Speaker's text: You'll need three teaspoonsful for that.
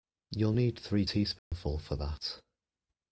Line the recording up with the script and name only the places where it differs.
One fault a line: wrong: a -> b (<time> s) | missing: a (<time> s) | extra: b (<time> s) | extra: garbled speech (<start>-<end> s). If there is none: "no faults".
no faults